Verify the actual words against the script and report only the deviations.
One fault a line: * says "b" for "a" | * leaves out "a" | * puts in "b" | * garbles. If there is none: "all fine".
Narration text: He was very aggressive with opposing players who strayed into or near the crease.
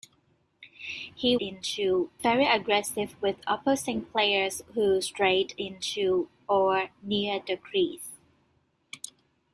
* says "into" for "was"